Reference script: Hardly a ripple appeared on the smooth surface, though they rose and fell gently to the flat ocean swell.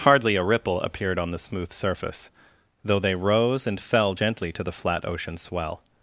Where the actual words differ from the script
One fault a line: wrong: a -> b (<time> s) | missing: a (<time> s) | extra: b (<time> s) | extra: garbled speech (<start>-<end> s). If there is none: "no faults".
no faults